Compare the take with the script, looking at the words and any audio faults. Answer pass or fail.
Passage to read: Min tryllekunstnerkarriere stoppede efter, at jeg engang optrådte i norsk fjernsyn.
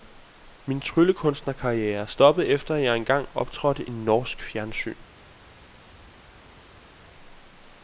pass